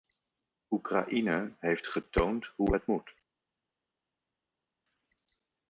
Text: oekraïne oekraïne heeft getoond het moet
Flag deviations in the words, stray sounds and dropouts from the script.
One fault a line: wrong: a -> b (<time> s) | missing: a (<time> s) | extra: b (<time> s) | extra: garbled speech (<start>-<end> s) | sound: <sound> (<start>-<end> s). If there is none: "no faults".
missing: oekraïne (1.5 s)
extra: hoe (2.5 s)